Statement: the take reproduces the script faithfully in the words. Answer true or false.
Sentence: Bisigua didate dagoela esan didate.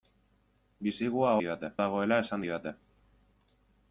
true